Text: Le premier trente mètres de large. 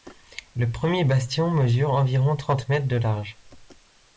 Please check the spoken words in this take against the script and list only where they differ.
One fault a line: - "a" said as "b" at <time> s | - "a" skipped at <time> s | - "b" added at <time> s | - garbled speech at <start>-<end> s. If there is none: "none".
- "bastion mesure environ" added at 1.0 s